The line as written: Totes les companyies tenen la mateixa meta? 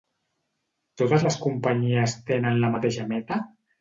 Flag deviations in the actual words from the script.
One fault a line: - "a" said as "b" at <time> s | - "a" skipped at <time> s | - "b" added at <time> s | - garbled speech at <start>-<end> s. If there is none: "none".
none